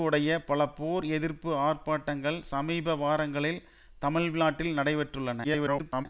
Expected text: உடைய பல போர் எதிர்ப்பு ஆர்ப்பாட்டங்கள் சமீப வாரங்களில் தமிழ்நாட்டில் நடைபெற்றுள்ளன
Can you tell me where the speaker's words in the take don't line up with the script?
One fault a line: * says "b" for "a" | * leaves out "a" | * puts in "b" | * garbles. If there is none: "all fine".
* garbles